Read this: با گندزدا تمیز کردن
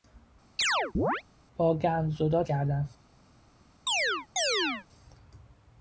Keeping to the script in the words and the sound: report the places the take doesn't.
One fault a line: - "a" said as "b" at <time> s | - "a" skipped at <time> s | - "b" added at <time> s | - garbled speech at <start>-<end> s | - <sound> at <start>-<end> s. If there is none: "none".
- chirp at 0.6-1.2 s
- "تمیز" skipped at 2.4 s
- chirp at 3.9-4.9 s